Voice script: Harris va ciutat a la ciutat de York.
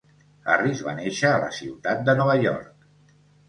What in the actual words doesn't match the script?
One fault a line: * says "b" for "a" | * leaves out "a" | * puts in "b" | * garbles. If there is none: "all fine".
* says "néixer" for "ciutat"
* puts in "Nova"